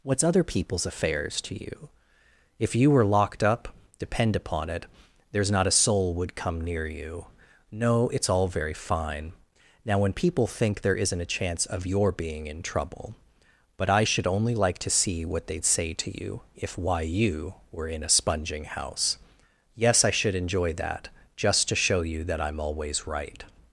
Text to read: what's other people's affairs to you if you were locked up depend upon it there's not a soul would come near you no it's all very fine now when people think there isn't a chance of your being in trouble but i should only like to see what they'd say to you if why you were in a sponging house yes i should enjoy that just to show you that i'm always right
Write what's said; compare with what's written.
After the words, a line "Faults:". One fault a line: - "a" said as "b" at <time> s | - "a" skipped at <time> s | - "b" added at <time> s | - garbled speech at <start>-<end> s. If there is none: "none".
what's other people's affairs to you if you were locked up depend upon it there's not a soul would come near you no it's all very fine now when people think there isn't a chance of your being in trouble but i should only like to see what they'd say to you if why you were in a sponging house yes i should enjoy that just to show you that i'm always right
Faults:
none